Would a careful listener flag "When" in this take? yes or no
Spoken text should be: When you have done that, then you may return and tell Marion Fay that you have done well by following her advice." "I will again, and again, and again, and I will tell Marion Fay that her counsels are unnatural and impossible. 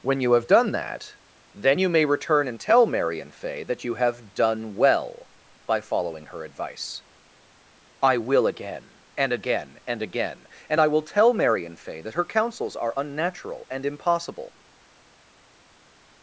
no